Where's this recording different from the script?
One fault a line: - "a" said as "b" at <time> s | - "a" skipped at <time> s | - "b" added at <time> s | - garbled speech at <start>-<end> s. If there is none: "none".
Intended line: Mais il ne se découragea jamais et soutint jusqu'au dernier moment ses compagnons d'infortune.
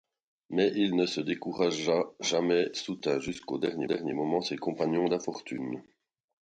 - "et" skipped at 2.7 s
- "dernier" added at 3.8 s